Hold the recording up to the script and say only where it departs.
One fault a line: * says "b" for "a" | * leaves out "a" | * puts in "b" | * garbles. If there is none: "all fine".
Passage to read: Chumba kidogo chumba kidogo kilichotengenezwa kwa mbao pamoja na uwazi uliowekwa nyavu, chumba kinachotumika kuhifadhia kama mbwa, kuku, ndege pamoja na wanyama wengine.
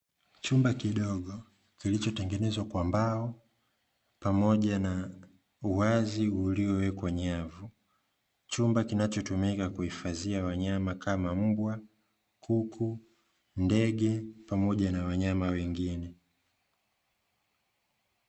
* leaves out "chumba kidogo"
* puts in "wanyama"